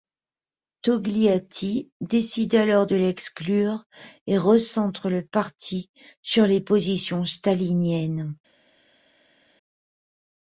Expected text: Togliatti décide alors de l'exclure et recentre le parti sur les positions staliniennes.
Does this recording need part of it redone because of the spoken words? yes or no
no